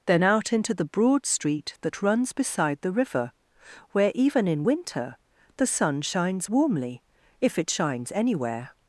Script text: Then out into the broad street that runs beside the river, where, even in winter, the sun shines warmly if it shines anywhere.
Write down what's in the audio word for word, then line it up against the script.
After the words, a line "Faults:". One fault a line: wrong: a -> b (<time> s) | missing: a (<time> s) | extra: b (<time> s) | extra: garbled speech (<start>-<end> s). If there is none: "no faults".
Then out into the broad street that runs beside the river, where, even in winter, the sun shines warmly if it shines anywhere.
Faults:
no faults